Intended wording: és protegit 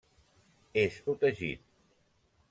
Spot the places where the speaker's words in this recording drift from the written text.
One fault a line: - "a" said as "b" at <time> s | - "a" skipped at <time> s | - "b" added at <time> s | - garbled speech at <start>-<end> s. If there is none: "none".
none